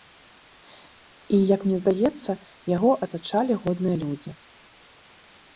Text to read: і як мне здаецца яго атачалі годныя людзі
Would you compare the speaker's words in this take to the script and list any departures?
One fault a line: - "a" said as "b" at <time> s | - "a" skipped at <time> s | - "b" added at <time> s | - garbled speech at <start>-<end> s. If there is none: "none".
none